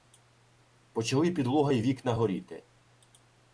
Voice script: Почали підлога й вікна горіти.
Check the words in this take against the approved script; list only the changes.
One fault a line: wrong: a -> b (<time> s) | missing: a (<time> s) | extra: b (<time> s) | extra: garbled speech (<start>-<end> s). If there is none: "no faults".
no faults